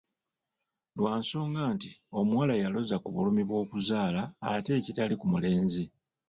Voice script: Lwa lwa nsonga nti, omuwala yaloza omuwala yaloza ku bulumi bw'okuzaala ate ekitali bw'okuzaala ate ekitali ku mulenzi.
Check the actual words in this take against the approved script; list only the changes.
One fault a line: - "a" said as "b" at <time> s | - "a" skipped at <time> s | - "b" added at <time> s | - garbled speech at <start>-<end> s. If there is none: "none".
- "lwa" skipped at 1.1 s
- "omuwala yaloza" skipped at 3.0 s
- "bw'okuzaala ate ekitali" skipped at 5.2 s